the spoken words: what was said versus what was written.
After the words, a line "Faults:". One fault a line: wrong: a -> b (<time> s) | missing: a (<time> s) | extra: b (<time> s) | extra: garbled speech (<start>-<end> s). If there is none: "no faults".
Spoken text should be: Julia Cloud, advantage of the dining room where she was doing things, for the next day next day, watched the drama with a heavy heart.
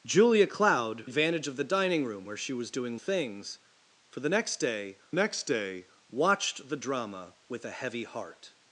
Julia Cloud, advantage of the dining room where she was doing things, for the next day next day, watched the drama with a heavy heart.
Faults:
no faults